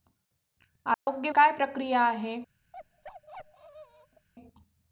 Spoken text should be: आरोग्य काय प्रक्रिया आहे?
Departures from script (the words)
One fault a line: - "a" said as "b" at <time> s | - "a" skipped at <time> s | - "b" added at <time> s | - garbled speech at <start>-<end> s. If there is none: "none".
none